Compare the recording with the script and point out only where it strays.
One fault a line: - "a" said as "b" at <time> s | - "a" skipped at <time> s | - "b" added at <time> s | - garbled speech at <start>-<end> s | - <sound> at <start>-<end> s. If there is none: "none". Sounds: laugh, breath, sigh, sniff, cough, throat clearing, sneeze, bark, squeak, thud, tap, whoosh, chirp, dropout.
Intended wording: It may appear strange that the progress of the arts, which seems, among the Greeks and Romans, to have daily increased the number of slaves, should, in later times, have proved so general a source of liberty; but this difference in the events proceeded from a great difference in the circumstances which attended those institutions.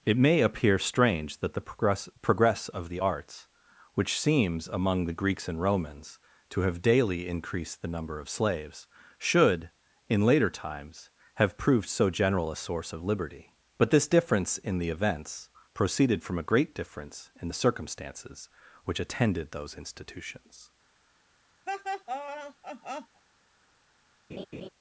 - "progress" added at 2.2 s
- laugh at 21.7-23.2 s
- laugh at 24.3-24.7 s